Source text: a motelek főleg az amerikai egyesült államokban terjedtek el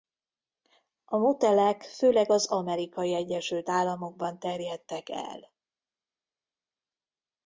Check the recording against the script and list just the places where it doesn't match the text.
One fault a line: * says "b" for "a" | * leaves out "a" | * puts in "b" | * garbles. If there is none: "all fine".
all fine